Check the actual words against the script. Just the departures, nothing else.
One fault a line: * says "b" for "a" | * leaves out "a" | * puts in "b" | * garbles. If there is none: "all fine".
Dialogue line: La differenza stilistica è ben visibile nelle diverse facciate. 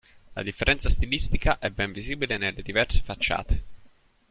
all fine